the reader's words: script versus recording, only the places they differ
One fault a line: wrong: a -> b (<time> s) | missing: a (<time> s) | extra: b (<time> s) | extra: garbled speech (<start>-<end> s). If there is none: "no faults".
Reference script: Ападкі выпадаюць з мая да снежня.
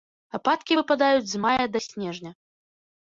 no faults